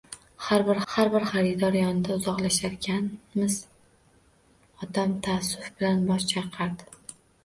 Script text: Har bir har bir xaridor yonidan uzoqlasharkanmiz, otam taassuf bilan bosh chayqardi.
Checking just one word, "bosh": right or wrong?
right